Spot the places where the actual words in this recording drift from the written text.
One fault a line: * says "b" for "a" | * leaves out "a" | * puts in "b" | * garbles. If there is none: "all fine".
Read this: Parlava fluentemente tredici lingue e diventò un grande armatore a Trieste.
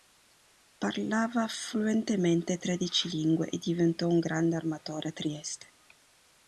all fine